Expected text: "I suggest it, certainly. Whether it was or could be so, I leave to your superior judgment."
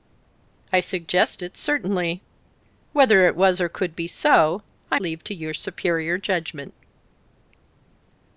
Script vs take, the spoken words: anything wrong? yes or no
no